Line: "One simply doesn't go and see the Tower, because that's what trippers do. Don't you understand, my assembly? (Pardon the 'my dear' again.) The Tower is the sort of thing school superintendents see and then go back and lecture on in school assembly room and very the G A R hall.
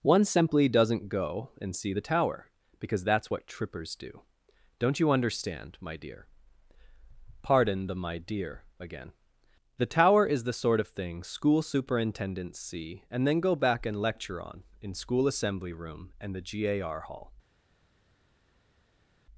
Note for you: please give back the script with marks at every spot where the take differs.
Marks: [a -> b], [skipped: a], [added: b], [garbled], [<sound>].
"One simply doesn't go and see the Tower, because that's what trippers do. Don't you understand, my [assembly? -> dear] (Pardon the 'my dear' again.) The Tower is the sort of thing school superintendents see and then go back and lecture on in school assembly room and [skipped: very] the G A R hall.